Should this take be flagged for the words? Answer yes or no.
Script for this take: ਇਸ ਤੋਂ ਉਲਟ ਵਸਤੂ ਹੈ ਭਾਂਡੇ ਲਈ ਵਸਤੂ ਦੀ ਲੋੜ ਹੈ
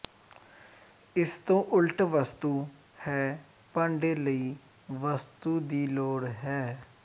no